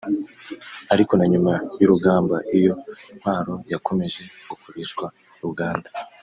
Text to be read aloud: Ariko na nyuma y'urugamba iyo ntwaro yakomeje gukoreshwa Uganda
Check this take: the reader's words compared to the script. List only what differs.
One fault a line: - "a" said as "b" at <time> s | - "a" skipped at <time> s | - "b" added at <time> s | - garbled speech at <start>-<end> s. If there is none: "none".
none